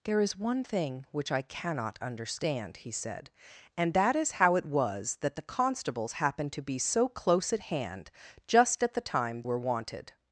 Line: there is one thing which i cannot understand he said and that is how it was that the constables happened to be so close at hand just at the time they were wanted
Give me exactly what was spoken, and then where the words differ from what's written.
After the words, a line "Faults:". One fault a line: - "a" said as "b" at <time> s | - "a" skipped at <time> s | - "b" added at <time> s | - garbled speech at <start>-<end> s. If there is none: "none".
there is one thing which i cannot understand he said and that is how it was that the constables happened to be so close at hand just at the time were wanted
Faults:
- "they" skipped at 9.4 s